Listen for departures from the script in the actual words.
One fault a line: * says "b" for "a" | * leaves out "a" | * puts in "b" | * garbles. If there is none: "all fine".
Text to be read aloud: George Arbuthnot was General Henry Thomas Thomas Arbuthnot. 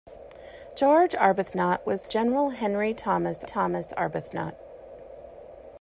all fine